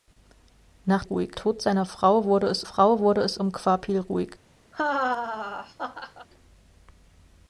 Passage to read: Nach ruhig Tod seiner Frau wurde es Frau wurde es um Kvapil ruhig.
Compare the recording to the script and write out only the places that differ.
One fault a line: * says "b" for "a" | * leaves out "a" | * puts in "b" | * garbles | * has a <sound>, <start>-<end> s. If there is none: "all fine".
* has a laugh, 4.7-6.3 s